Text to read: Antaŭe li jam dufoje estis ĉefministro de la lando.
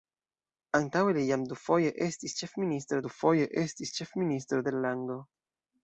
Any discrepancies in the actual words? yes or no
yes